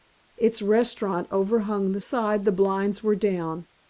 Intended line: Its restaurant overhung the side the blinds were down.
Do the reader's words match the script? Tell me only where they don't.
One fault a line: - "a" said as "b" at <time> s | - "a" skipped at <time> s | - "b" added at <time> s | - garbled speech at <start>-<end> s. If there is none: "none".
none